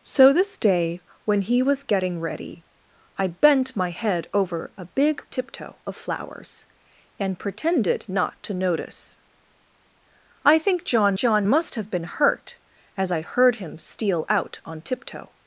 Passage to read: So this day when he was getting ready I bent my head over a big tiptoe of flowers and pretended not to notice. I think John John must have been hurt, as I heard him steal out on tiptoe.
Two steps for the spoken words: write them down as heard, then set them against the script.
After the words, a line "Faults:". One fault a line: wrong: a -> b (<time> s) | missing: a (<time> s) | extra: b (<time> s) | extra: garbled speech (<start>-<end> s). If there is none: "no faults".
So this day when he was getting ready I bent my head over a big tiptoe of flowers and pretended not to notice. I think John John must have been hurt, as I heard him steal out on tiptoe.
Faults:
no faults